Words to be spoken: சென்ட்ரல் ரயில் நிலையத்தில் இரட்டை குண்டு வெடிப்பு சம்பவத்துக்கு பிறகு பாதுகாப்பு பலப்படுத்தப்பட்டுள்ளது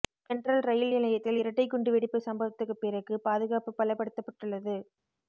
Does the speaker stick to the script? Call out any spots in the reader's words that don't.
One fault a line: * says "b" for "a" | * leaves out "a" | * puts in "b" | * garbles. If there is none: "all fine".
all fine